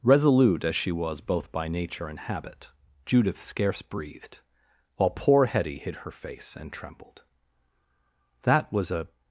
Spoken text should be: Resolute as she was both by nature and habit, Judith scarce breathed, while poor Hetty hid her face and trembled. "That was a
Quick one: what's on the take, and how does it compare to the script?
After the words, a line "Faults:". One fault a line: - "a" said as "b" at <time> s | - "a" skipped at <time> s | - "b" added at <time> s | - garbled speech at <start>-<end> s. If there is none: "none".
Resolute as she was both by nature and habit, Judith scarce breathed, while poor Hetty hid her face and trembled. "That was a
Faults:
none